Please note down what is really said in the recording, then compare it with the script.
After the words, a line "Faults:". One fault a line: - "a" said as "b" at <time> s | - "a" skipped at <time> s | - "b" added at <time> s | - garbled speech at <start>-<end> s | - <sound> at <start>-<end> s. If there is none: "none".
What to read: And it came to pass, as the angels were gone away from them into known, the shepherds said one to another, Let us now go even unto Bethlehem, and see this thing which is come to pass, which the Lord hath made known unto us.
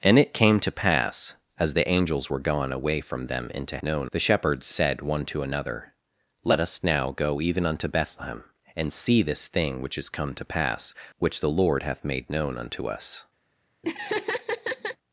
And it came to pass, as the angels were gone away from them into known, the shepherds said one to another, Let us now go even unto Bethlehem, and see this thing which is come to pass, which the Lord hath made known unto us.
Faults:
- laugh at 13.8-15.0 s